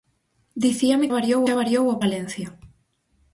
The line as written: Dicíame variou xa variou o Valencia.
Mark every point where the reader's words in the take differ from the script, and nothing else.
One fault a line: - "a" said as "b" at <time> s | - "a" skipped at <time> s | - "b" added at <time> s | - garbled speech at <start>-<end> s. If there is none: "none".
none